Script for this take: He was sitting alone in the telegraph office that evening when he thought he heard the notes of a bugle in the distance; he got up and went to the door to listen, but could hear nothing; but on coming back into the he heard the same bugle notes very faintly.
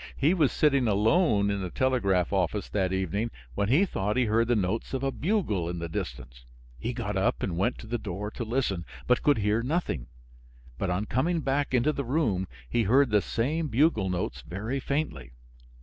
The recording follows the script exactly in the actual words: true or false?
false